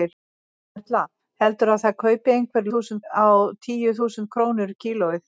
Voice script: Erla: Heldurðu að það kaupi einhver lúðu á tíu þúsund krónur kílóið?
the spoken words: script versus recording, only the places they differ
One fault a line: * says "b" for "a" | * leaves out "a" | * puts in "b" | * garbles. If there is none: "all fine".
* says "þúsund" for "lúðu"